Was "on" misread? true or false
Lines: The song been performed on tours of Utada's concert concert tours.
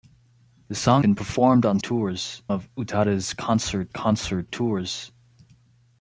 false